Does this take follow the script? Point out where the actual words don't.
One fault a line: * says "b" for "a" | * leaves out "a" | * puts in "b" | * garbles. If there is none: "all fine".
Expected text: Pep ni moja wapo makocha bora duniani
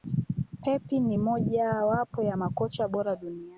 * puts in "ya"